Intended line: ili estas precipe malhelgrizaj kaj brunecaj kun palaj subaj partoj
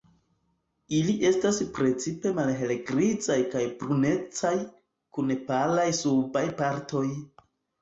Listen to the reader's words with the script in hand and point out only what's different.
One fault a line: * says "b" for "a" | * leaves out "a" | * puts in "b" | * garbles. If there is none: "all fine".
all fine